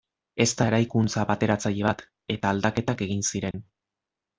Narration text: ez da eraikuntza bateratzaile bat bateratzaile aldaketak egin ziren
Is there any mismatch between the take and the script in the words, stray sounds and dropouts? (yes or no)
yes